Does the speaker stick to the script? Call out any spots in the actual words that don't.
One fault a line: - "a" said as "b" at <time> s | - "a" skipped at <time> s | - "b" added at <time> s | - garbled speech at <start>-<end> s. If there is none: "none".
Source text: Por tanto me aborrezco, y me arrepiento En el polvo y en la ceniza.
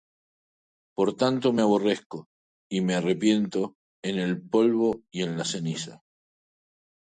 none